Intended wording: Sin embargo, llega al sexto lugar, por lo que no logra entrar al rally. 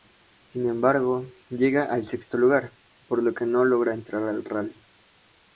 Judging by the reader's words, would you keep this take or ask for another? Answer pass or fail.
pass